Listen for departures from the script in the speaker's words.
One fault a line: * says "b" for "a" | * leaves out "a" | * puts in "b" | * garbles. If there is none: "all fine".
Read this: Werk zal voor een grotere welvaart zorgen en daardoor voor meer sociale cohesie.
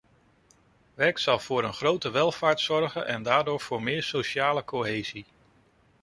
all fine